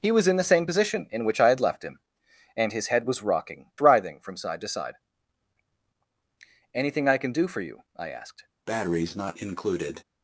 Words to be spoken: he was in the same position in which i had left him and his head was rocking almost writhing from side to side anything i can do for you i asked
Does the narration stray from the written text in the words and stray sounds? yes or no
yes